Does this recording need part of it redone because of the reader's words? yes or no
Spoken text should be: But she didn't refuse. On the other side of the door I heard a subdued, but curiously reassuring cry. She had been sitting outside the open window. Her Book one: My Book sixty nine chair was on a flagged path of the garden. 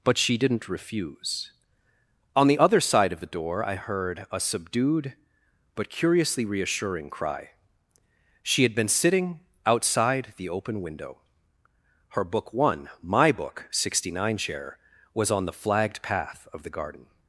yes